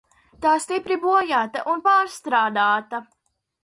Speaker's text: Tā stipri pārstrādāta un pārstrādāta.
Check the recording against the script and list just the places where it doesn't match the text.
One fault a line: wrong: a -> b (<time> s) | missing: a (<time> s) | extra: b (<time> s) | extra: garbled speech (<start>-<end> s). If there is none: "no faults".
wrong: pārstrādāta -> bojāta (1.1 s)